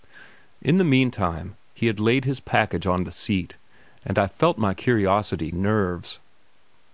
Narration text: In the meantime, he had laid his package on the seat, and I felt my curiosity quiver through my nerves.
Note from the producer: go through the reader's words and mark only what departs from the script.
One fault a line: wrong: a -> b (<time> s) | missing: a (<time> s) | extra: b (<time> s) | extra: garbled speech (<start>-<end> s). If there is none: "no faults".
missing: quiver through my (5.5 s)